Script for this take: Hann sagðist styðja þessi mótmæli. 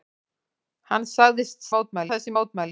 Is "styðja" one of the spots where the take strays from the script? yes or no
yes